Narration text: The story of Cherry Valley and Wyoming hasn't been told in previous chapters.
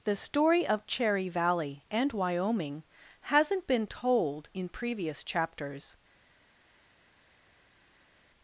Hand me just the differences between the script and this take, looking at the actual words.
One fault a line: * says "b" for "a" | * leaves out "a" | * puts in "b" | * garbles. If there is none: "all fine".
all fine